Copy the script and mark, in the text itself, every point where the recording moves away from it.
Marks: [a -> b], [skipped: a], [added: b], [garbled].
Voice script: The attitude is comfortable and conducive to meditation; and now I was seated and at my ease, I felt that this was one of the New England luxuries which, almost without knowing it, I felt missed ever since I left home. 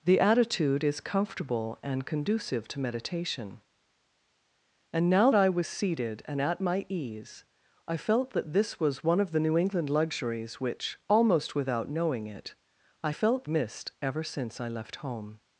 The attitude is comfortable and conducive to meditation; and now I was seated and at my ease, I felt that this was one of the New England luxuries which, almost without knowing it, I felt missed ever since I left home.